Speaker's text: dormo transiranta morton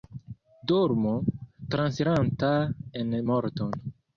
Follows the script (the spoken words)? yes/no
no